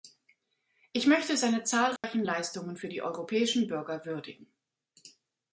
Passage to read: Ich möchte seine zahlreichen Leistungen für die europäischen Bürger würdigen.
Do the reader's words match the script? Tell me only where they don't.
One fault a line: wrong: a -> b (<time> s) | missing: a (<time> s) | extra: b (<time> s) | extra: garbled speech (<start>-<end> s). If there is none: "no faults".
no faults